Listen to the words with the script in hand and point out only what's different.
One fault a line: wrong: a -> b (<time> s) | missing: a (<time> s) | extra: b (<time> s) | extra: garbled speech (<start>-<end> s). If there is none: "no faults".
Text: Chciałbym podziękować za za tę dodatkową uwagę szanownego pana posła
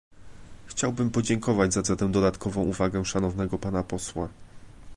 no faults